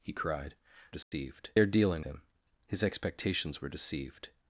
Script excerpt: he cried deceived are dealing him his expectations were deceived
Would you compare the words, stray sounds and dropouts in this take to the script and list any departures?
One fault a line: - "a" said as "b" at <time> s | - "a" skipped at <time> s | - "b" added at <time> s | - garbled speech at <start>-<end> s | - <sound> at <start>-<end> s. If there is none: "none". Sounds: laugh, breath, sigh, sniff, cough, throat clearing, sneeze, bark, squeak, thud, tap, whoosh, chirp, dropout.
- dropout at 1.0-1.1 s